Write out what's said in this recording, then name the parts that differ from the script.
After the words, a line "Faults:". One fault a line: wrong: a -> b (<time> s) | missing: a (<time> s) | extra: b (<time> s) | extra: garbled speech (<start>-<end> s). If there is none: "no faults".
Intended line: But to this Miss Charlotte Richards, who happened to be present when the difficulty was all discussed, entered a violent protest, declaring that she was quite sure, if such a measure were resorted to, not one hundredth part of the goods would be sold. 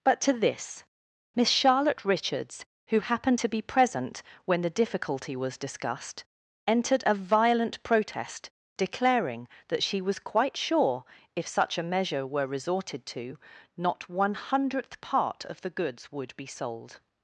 But to this Miss Charlotte Richards, who happened to be present when the difficulty was discussed, entered a violent protest, declaring that she was quite sure, if such a measure were resorted to, not one hundredth part of the goods would be sold.
Faults:
missing: all (5.6 s)